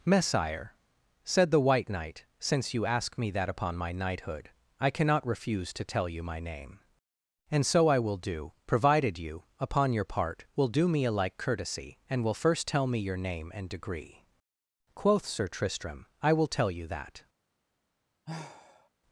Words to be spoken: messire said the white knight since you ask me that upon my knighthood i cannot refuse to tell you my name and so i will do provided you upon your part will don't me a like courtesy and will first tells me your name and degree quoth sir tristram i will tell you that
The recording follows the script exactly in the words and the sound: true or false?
false